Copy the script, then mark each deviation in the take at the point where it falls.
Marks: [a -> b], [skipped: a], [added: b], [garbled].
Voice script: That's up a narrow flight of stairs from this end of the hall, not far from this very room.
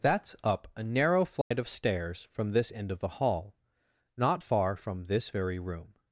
That's up a narrow flight of stairs from this end of the hall, not far from this very room.